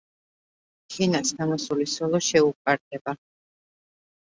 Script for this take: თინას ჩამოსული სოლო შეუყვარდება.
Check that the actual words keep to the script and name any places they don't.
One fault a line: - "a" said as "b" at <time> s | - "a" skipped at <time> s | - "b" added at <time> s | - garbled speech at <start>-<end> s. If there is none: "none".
none